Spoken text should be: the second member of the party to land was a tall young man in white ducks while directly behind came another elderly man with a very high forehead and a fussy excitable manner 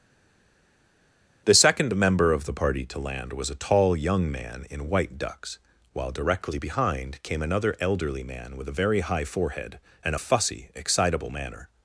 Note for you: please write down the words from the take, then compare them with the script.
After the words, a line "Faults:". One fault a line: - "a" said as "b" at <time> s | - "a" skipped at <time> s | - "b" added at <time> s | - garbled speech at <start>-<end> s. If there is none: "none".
the second member of the party to land was a tall young man in white ducks while directly behind came another elderly man with a very high forehead and a fussy excitable manner
Faults:
none